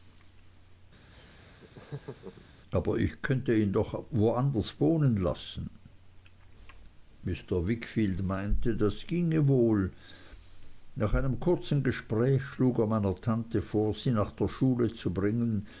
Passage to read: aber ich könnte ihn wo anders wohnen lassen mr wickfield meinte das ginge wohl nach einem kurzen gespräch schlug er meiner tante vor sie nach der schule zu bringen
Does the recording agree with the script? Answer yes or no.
no